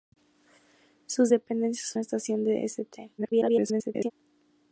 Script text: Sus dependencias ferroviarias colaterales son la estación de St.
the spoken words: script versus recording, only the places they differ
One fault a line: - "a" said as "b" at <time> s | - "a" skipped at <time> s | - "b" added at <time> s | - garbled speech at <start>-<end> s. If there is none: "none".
- "ferroviarias colaterales son" skipped at 1.9 s
- garbled speech at 3.2-4.1 s